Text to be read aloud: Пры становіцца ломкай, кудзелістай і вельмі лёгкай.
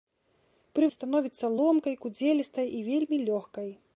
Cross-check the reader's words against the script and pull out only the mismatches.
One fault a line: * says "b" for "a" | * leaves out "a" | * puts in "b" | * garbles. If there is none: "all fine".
all fine